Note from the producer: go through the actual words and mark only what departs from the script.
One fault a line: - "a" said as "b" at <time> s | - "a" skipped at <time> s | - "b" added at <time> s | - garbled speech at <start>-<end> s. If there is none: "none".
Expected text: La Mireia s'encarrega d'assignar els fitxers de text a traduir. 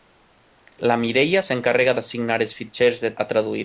- "text" skipped at 3.1 s